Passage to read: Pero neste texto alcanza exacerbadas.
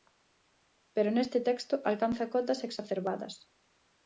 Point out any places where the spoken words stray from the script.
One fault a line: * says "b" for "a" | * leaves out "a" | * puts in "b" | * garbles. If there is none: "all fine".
* puts in "cotas"